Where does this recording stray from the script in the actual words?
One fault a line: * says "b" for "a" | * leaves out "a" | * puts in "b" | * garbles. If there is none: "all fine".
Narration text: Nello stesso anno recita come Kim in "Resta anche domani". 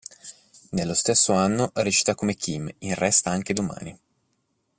all fine